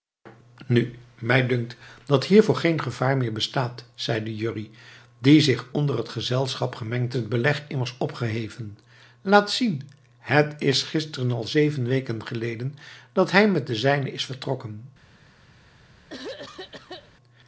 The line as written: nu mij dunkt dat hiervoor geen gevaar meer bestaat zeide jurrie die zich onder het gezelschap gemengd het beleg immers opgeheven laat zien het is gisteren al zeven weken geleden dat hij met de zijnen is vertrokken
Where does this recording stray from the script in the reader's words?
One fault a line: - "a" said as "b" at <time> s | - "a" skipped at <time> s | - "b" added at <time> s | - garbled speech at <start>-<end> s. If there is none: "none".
none